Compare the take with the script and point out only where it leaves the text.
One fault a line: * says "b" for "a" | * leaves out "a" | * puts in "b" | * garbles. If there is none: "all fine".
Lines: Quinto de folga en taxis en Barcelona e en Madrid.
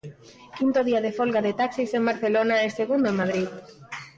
* puts in "día"
* says "de" for "en"
* puts in "segundo"